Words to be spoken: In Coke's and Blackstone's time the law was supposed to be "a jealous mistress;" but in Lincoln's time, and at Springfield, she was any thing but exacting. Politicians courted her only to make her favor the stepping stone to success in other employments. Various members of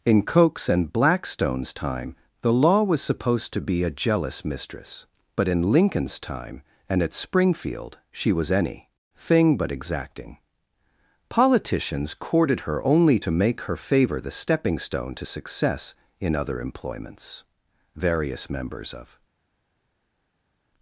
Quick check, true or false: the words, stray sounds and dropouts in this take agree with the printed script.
true